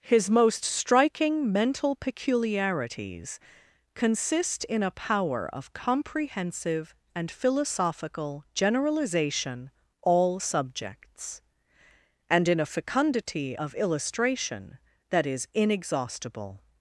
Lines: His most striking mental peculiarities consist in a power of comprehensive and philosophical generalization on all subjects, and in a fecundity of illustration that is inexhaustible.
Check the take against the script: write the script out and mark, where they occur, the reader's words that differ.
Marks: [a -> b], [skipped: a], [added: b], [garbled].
His most striking mental peculiarities consist in a power of comprehensive and philosophical generalization [skipped: on] all subjects, and in a fecundity of illustration that is inexhaustible.